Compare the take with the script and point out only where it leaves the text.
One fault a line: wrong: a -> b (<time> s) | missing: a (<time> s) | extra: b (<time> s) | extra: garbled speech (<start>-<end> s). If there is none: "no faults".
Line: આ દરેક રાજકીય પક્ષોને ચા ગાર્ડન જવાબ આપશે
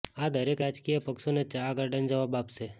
no faults